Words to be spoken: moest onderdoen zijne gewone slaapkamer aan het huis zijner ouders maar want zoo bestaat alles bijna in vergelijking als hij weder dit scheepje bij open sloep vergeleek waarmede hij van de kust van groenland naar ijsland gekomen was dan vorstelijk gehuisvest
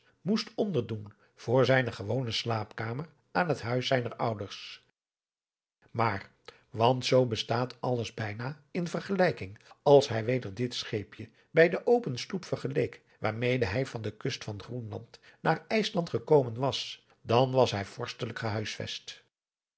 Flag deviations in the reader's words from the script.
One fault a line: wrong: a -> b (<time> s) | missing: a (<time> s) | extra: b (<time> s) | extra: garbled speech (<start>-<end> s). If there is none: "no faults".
extra: voor (1.4 s)
extra: de (11.7 s)
extra: was hij (17.5 s)